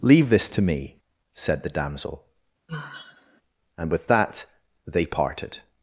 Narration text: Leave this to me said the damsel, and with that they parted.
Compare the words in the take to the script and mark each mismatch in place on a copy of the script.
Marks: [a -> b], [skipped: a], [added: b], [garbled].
Leave this to me said the damsel, and with that they parted.